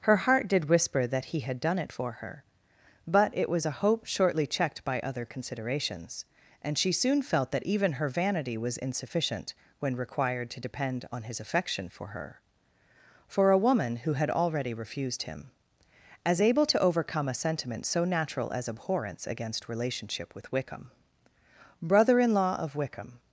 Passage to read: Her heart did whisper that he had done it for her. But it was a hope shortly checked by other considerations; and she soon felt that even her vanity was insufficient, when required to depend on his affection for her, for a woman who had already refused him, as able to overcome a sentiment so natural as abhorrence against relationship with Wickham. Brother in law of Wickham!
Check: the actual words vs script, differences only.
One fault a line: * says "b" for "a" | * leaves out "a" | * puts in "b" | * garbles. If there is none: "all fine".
all fine